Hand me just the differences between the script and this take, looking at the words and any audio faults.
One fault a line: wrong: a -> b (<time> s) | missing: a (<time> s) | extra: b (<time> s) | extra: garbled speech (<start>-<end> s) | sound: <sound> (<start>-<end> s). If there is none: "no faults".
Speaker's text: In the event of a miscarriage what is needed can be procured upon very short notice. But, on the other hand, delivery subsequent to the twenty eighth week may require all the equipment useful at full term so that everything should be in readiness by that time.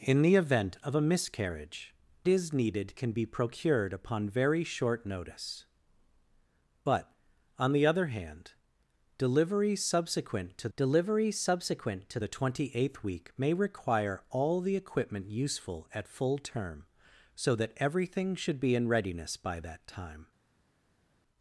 missing: what (1.9 s)
extra: delivery subsequent to (10.8 s)